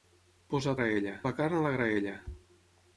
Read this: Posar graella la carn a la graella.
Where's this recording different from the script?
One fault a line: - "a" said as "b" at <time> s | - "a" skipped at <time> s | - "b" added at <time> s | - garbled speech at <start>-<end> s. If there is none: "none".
none